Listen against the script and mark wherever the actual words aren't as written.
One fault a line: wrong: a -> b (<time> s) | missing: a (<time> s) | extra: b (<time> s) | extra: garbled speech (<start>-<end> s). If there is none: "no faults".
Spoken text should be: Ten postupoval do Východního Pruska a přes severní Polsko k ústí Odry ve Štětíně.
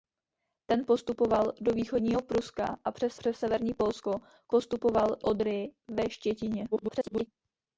extra: přes (3.1 s)
wrong: ústí -> postupoval (4.5 s)
extra: garbled speech (6.7-7.3 s)